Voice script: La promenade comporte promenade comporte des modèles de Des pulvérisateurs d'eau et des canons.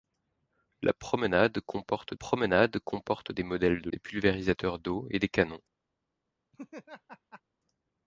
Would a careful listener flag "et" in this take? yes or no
no